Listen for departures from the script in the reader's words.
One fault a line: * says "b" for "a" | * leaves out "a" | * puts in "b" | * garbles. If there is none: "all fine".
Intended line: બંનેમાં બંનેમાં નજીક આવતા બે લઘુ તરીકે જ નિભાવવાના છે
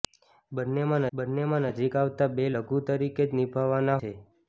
all fine